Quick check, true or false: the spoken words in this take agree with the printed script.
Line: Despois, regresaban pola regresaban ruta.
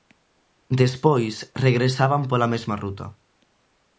false